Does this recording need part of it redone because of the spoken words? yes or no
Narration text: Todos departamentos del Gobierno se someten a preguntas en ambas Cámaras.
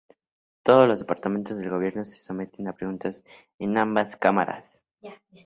yes